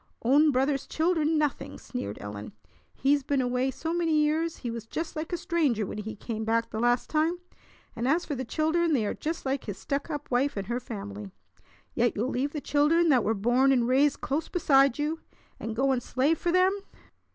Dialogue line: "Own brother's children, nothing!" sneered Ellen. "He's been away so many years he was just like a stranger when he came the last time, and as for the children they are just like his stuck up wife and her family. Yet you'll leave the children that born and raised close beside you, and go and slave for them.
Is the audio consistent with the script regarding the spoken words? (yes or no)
no